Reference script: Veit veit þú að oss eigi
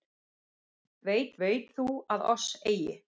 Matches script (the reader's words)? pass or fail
pass